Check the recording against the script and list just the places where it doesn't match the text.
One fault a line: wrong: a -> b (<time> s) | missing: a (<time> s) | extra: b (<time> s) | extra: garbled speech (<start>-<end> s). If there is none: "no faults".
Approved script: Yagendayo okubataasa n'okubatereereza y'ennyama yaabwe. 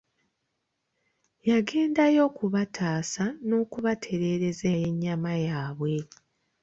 no faults